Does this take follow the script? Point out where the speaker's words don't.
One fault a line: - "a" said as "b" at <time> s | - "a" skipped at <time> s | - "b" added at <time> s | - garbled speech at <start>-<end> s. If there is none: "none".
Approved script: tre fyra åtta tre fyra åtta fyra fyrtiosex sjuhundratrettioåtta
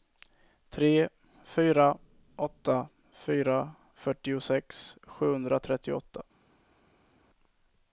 - "tre fyra åtta" skipped at 2.9 s